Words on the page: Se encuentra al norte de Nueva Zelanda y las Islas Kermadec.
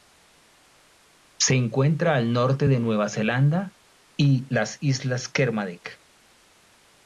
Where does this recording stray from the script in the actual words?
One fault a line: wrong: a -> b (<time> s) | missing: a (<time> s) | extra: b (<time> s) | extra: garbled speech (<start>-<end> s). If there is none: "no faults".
no faults